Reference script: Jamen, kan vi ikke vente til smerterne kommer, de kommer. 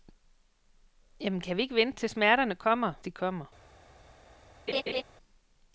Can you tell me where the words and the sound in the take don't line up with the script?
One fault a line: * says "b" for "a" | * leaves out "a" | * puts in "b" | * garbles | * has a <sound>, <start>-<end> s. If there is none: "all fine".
* has a laugh, 4.7-5.0 s